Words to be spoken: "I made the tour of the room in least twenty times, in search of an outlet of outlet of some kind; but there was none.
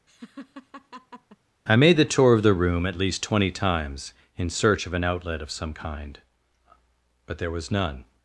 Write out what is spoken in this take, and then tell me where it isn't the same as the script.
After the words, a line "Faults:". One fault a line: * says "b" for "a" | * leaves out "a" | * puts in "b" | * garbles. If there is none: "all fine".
"I made the tour of the room at least twenty times, in search of an outlet of some kind; but there was none.
Faults:
* says "at" for "in"
* leaves out "outlet of"